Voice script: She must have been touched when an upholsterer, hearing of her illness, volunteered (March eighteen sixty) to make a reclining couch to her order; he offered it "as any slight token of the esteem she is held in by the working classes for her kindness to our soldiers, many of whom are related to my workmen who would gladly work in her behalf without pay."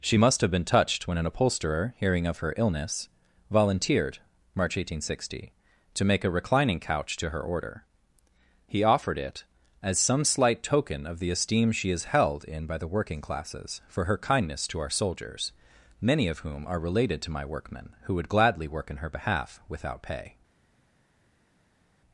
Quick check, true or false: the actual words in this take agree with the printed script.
false